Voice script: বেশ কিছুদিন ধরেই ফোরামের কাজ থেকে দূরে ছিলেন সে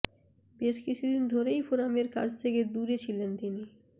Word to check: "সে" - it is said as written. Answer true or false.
false